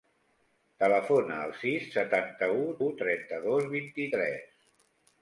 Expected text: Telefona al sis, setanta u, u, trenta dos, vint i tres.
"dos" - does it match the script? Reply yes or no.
yes